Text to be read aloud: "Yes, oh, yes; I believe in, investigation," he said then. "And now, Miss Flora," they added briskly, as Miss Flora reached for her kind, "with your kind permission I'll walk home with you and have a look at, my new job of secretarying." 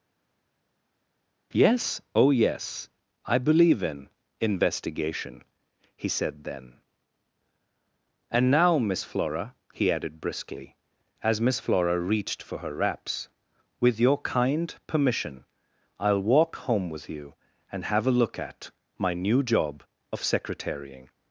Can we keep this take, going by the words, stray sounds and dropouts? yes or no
no